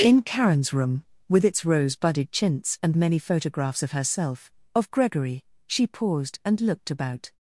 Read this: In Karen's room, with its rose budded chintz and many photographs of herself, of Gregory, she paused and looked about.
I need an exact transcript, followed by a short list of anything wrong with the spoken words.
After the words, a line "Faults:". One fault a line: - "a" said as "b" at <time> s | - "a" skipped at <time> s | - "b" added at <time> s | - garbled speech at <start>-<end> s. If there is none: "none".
In Karen's room, with its rose budded chintz and many photographs of herself, of Gregory, she paused and looked about.
Faults:
none